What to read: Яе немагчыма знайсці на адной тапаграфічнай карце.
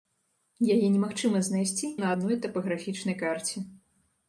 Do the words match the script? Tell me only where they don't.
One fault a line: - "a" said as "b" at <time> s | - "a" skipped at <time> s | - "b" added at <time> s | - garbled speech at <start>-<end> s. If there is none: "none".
none